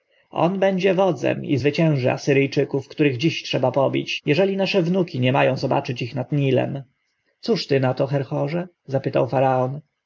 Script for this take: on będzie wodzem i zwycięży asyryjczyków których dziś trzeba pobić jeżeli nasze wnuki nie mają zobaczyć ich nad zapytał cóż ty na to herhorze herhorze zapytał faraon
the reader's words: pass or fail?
fail